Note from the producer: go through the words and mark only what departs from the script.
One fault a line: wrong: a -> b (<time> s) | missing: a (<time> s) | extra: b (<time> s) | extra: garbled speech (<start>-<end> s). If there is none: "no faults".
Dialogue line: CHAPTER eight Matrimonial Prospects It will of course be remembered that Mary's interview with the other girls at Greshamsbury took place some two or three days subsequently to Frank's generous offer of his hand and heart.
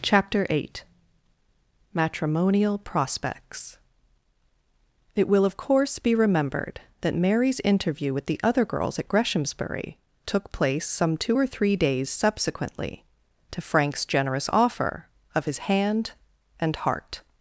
no faults